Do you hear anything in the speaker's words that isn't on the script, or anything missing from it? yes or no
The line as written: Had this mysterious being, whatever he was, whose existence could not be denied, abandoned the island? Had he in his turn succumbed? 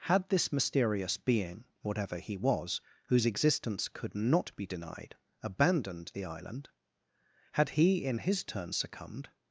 no